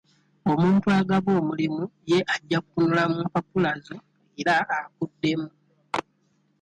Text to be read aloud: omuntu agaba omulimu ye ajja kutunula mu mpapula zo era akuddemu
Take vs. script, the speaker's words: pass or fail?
pass